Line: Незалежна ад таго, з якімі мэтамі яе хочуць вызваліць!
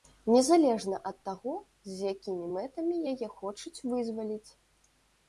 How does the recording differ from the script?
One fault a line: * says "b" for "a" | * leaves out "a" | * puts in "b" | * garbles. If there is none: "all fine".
all fine